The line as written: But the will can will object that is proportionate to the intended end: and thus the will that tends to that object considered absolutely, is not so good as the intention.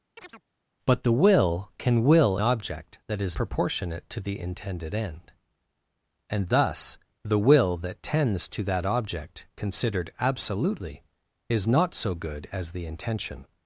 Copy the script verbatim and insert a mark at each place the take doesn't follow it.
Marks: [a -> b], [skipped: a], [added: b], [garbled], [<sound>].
[chirp] But the will can will object that is proportionate to the intended end: and thus the will that tends to that object considered absolutely, is not so good as the intention.